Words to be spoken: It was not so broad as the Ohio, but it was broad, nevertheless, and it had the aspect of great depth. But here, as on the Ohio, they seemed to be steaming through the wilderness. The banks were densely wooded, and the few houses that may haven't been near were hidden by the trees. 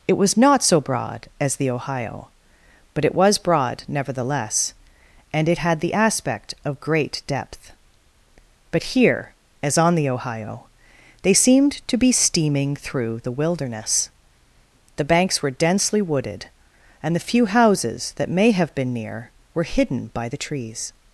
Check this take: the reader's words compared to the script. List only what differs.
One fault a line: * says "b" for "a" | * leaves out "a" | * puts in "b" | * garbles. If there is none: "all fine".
* says "have" for "haven't"